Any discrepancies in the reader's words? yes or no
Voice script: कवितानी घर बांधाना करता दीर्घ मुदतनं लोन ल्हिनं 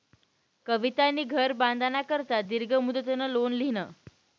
no